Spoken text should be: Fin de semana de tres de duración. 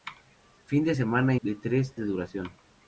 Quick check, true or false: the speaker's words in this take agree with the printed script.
true